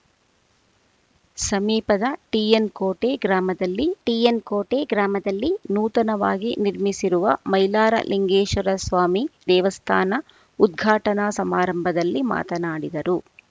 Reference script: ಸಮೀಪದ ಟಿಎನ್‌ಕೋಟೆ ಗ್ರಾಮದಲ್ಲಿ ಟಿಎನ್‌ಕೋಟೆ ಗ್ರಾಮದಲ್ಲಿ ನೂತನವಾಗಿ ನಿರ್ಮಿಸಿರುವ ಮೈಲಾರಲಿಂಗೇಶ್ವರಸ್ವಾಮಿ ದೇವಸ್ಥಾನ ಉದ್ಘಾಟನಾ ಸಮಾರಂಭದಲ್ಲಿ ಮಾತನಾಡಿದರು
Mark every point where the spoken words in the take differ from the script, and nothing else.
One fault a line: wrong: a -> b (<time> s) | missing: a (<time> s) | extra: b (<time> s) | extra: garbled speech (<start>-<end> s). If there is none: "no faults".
no faults